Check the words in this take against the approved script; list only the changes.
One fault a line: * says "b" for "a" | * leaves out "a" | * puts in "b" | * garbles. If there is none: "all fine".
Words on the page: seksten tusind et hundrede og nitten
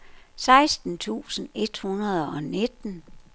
all fine